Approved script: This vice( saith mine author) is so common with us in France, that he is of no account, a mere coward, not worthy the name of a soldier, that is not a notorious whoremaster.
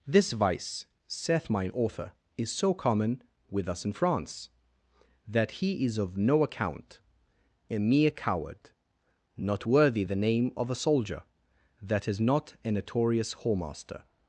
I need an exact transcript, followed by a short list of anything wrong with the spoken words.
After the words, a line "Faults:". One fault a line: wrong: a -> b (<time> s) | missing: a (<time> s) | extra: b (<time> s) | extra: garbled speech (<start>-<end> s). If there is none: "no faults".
This vice( saith mine author) is so common with us in France, that he is of no account, a mere coward, not worthy the name of a soldier, that is not a notorious whoremaster.
Faults:
no faults